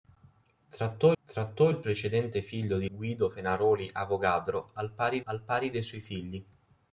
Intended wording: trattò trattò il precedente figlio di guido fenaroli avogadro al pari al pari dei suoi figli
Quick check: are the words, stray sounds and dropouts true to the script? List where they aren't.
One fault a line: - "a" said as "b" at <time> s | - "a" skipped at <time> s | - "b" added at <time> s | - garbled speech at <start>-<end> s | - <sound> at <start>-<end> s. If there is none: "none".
none